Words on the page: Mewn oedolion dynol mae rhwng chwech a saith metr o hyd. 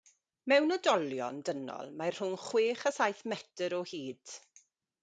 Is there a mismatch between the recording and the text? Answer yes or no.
no